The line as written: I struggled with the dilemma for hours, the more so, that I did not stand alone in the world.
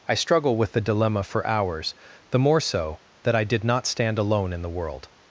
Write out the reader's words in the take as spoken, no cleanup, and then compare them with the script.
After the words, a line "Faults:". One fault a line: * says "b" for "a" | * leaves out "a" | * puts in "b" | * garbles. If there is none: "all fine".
I struggle with the dilemma for hours, the more so, that I did not stand alone in the world.
Faults:
* says "struggle" for "struggled"